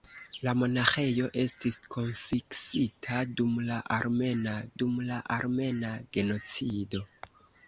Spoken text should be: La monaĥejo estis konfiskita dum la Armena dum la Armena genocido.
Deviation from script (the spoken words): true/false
false